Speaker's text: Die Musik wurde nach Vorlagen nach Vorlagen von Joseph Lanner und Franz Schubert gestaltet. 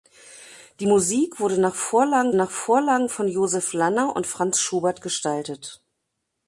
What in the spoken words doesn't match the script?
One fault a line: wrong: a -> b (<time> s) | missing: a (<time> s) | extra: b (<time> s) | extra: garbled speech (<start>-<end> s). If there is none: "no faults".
no faults